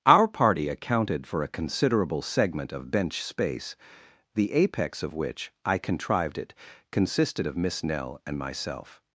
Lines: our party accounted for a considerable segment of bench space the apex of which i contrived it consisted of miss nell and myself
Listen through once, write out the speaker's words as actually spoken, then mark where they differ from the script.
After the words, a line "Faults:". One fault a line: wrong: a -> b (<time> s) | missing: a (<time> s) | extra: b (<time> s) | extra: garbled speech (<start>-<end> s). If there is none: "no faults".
our party accounted for a considerable segment of bench space the apex of which i contrived it consisted of miss nell and myself
Faults:
no faults